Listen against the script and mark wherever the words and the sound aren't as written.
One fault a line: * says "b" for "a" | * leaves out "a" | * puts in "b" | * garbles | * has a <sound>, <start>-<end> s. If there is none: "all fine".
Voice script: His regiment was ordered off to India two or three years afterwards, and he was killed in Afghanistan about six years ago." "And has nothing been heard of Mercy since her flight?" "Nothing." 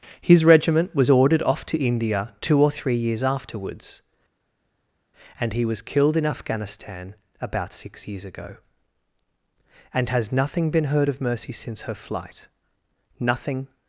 all fine